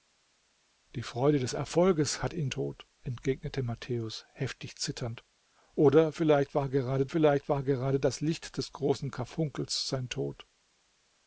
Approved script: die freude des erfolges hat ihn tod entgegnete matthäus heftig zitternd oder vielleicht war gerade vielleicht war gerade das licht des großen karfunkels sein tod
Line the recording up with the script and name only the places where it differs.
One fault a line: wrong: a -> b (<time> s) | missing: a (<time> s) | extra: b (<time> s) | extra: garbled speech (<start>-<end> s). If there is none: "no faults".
no faults